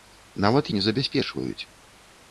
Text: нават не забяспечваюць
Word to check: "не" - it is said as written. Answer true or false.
true